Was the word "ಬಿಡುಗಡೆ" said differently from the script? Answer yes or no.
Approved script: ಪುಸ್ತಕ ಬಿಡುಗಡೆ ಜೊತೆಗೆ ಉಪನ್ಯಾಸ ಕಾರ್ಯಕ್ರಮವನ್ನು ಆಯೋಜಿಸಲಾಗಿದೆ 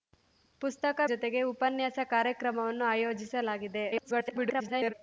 yes